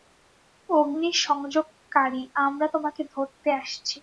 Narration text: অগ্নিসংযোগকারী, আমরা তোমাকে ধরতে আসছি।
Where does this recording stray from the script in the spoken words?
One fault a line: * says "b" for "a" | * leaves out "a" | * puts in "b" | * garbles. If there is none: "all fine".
all fine